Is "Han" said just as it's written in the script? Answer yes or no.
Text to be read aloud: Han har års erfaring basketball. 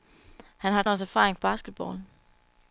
yes